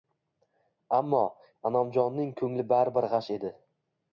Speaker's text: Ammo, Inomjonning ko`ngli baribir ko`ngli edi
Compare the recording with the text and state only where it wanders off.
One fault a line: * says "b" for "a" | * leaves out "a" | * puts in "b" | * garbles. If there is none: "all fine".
* says "g`ash" for "ko`ngli"